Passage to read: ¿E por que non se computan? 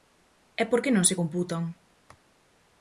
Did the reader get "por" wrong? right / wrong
right